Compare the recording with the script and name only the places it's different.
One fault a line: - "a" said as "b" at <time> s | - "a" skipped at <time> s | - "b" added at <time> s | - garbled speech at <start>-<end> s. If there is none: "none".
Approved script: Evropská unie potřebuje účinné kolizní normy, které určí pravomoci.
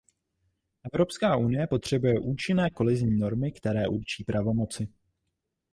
none